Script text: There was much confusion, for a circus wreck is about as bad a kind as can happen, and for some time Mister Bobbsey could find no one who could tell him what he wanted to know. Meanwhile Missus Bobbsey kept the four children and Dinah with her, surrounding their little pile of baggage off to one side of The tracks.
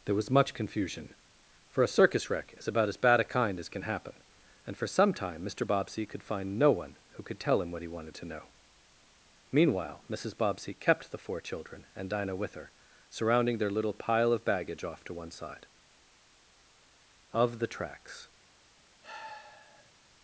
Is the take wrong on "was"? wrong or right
right